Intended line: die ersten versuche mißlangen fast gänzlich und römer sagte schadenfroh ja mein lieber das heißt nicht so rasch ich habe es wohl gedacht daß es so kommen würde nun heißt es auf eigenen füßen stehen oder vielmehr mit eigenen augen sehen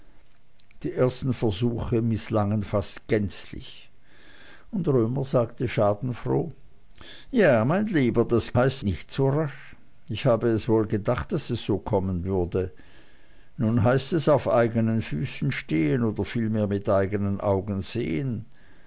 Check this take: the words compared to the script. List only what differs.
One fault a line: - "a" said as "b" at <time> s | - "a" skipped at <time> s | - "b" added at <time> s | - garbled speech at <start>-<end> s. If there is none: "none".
none